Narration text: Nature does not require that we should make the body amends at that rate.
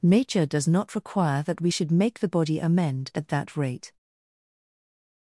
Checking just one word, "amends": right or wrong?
wrong